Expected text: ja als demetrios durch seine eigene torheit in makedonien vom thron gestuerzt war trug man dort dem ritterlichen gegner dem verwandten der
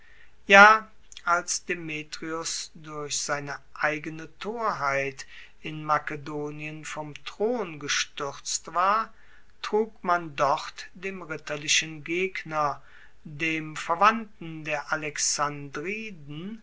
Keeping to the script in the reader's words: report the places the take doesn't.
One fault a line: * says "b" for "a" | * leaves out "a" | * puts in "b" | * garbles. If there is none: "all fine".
all fine